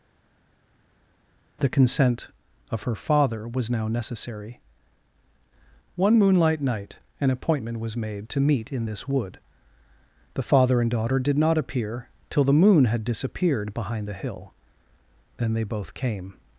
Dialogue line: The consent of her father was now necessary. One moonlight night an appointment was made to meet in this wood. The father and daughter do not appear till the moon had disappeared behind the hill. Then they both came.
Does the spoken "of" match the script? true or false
true